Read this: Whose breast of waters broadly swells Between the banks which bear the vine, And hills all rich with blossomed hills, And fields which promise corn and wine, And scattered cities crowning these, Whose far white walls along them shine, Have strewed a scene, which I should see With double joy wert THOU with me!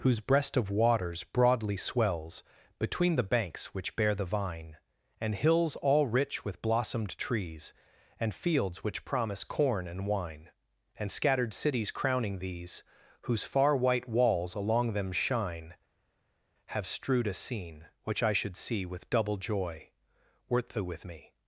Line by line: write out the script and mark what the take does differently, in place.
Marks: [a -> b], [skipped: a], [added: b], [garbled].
Whose breast of waters broadly swells Between the banks which bear the vine, And hills all rich with blossomed [hills, -> trees] And fields which promise corn and wine, And scattered cities crowning these, Whose far white walls along them shine, Have strewed a scene, which I should see With double joy wert THOU with me!